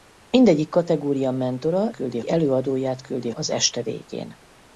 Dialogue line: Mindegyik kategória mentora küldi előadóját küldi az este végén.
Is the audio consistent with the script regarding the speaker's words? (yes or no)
yes